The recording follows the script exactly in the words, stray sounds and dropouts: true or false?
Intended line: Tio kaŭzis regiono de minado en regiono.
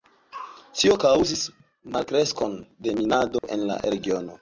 false